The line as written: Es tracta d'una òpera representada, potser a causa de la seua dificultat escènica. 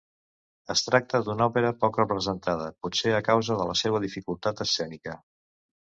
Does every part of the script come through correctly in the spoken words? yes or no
no